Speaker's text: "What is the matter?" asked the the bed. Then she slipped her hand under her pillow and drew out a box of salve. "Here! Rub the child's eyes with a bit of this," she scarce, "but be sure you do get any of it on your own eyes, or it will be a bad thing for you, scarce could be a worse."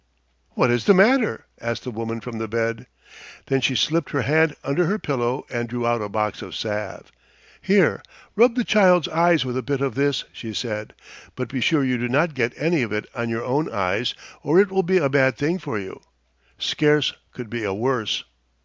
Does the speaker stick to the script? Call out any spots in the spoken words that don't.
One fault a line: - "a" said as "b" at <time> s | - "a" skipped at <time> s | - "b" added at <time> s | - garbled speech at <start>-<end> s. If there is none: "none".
- "woman from" added at 1.9 s
- "scarce" said as "said" at 10.6 s
- "not" added at 12.1 s